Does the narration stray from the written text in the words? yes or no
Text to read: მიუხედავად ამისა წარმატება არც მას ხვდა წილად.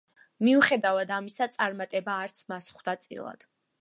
no